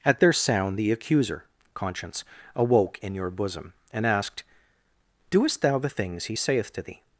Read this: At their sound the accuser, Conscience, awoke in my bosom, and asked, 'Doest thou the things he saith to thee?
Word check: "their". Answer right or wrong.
right